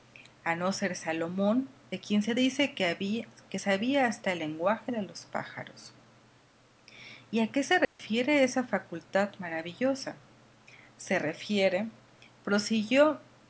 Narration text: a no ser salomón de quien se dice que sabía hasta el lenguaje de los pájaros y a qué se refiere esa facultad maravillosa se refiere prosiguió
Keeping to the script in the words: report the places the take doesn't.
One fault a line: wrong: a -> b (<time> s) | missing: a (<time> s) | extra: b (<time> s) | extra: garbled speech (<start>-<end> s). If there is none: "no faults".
no faults